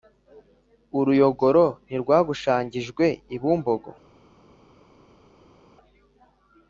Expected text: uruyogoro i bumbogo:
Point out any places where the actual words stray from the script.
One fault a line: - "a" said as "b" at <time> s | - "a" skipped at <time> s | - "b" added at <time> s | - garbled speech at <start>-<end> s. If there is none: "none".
- "ntirwagushangijwe" added at 1.9 s